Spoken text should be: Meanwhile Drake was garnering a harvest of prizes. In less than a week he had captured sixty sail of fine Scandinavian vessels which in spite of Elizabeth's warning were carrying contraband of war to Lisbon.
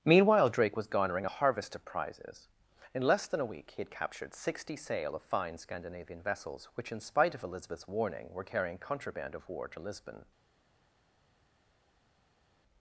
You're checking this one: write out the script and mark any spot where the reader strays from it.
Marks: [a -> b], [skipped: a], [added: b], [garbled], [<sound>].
Meanwhile Drake was garnering a harvest of prizes. In less than a week he had captured sixty sail of fine Scandinavian vessels which in spite of Elizabeth's warning were carrying contraband of war to Lisbon.